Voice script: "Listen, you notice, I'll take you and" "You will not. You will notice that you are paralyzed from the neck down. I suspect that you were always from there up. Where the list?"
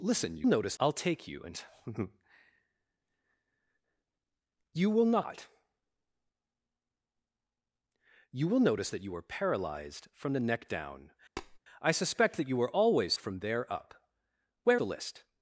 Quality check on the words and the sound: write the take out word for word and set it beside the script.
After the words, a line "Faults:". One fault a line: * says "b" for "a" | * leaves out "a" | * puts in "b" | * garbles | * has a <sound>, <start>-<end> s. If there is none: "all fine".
"Listen, you notice, I'll take you and" "You will not. You will notice that you are paralyzed from the neck down. I suspect that you were always from there up. Where the list?"
Faults:
* has a tap, 11.4-11.6 s